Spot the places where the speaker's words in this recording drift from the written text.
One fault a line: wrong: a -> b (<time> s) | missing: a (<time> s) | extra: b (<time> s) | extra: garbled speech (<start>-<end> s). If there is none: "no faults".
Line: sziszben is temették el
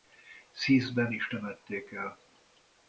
no faults